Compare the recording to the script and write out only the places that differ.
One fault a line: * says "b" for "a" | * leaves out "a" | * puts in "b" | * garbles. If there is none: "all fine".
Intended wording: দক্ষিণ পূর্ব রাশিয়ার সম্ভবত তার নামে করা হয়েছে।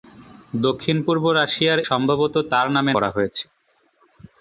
all fine